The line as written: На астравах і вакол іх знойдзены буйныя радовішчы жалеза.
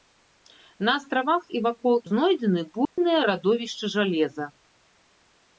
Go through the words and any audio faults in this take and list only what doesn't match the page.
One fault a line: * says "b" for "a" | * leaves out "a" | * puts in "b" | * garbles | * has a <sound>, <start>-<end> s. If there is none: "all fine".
* leaves out "іх"
* has a dropout, 2.8-3.0 s